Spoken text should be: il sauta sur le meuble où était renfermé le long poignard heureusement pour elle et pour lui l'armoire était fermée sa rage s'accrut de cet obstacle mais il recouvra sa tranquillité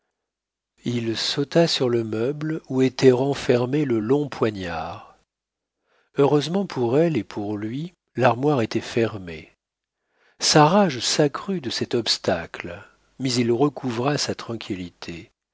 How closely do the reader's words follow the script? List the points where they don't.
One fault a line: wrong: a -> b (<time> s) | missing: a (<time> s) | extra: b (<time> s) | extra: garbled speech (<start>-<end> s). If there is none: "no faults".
no faults